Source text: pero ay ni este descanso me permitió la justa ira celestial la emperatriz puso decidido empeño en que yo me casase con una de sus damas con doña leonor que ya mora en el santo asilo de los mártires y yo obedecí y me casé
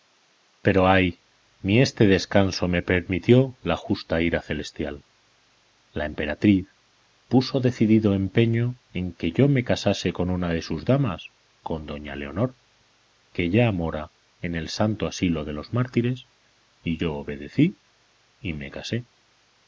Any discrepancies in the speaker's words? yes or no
no